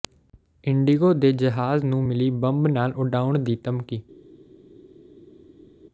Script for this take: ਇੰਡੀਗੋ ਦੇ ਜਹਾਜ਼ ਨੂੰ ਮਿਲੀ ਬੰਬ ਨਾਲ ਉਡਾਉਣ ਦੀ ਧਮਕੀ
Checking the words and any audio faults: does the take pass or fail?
pass